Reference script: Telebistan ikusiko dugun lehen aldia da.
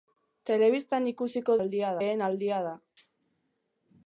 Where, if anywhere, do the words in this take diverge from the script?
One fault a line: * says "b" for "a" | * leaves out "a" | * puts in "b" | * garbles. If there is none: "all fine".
* says "aldia" for "dugun"